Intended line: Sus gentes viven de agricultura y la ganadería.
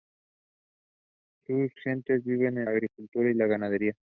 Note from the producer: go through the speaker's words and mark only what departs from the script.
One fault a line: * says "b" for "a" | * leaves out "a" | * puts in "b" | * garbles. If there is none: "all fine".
all fine